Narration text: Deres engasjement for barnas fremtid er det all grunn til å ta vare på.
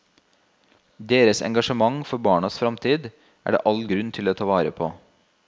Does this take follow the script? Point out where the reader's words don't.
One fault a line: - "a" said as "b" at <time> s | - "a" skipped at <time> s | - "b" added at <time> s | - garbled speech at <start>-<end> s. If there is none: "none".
none